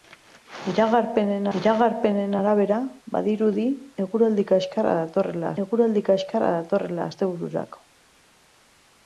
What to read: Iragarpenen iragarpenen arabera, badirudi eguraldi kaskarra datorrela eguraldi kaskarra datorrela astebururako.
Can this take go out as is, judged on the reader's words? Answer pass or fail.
pass